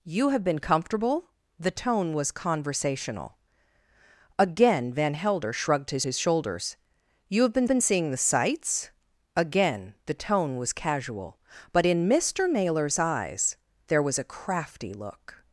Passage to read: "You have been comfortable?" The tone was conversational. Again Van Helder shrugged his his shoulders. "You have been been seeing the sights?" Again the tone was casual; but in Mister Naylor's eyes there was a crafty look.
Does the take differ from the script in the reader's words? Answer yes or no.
no